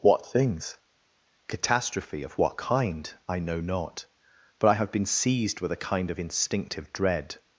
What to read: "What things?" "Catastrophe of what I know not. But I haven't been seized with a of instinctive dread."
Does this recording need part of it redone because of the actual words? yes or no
yes